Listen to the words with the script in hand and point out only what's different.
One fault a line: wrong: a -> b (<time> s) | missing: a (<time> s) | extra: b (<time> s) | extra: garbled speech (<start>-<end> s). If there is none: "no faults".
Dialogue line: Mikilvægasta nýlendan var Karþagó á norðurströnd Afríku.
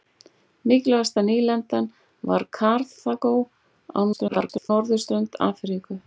extra: garbled speech (4.1-4.7 s)